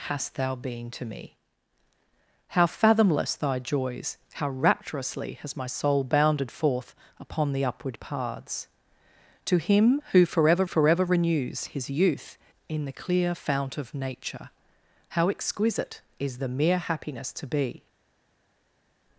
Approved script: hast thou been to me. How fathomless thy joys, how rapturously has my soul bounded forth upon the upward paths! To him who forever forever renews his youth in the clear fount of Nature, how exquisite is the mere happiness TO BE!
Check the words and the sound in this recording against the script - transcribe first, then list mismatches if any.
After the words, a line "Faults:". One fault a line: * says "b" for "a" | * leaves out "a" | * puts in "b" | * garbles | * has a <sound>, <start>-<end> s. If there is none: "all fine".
hast thou been to me. How fathomless thy joys, how rapturously has my soul bounded forth upon the upward paths! To him who forever forever renews his youth in the clear fount of Nature, how exquisite is the mere happiness TO BE!
Faults:
all fine